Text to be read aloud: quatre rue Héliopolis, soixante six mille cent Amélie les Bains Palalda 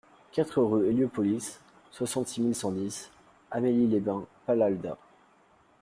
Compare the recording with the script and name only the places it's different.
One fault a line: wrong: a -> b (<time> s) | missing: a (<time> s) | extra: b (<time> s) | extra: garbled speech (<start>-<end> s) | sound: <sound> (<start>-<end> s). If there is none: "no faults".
extra: dix (2.7 s)